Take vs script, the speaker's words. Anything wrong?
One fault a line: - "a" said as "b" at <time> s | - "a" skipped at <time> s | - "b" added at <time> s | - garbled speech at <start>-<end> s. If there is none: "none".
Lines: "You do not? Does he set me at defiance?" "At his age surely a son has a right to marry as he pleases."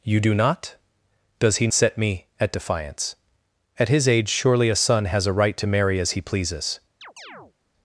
none